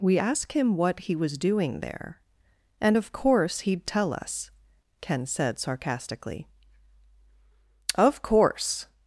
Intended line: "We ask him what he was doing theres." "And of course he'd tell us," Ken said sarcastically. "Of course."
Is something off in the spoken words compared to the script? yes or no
yes